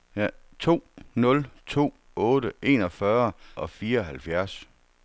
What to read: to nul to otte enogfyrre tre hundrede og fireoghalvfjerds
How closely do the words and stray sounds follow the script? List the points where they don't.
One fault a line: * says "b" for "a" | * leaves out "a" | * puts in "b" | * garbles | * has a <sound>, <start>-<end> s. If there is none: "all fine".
* leaves out "tre hundrede"